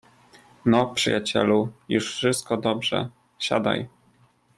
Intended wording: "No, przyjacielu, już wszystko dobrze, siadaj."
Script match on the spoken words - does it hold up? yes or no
yes